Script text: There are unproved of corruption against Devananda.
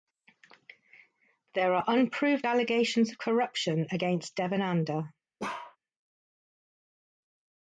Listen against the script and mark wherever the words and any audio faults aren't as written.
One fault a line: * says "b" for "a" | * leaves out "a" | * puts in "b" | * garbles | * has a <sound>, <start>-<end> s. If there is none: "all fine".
* puts in "allegations"
* has a bark, 5.4-5.8 s